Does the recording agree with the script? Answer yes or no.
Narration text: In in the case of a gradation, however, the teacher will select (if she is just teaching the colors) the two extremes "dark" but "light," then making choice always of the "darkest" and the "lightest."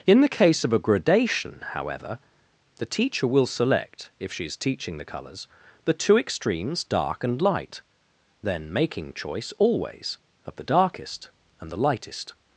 no